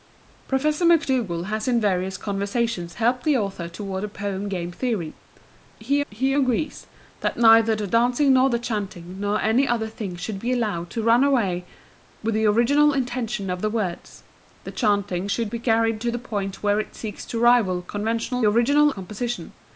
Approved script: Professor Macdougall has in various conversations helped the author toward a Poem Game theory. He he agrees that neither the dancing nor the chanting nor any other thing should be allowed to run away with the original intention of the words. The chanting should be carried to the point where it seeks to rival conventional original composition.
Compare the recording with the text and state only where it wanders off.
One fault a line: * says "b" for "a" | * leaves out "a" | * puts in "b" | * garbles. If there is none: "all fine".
all fine